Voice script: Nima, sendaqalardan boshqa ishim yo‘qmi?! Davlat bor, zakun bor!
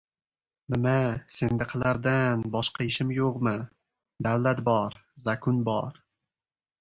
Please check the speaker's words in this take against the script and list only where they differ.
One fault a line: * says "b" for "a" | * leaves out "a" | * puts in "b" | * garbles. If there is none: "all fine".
all fine